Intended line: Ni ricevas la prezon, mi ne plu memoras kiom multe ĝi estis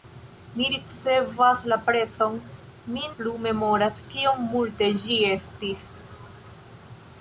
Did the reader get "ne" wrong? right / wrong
wrong